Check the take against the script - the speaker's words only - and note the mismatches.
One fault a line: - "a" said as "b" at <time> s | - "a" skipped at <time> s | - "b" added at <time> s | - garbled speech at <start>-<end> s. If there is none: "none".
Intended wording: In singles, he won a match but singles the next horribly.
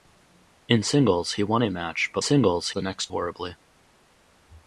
none